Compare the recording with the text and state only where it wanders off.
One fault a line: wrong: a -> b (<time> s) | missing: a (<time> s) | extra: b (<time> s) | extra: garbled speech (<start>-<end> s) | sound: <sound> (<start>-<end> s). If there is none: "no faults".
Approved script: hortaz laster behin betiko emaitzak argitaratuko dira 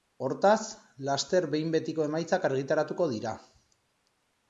no faults